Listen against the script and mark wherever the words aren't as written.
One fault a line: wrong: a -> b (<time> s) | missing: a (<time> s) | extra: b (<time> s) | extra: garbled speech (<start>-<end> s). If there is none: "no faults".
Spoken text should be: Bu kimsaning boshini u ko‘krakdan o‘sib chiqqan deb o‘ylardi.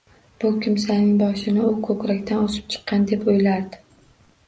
no faults